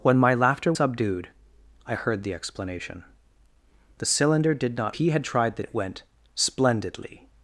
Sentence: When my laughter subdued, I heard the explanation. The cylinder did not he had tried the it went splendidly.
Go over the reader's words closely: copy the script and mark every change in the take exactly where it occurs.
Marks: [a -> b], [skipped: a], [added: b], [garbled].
When my laughter subdued, I heard the explanation. The cylinder did not he had tried the it went splendidly.